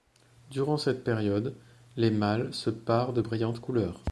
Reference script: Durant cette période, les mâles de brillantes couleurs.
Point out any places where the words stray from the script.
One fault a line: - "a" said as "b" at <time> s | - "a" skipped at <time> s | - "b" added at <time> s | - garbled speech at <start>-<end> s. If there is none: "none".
- "se parent" added at 2.5 s